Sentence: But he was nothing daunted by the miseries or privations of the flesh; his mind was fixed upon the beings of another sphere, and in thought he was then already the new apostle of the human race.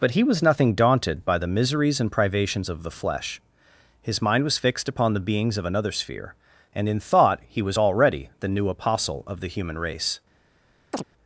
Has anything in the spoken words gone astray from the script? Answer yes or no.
yes